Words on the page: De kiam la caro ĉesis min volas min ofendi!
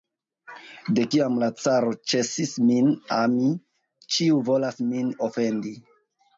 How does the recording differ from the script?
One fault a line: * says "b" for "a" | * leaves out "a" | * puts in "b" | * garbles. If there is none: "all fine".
* puts in "ami ĉiu"